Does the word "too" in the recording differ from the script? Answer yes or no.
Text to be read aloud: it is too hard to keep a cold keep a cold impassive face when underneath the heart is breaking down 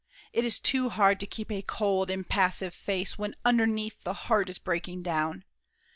no